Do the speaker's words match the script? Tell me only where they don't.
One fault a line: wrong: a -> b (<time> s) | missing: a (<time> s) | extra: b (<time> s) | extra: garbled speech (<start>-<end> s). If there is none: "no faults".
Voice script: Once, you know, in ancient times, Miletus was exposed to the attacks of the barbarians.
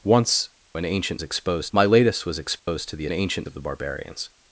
missing: you know (0.5 s)
wrong: times -> exposed (1.2 s)
wrong: attacks -> ancient (3.1 s)